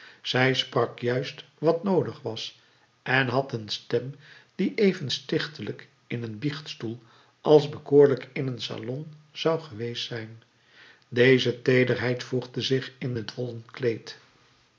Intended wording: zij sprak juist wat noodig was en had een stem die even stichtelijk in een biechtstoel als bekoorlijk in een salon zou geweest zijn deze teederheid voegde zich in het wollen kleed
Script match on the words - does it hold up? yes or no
yes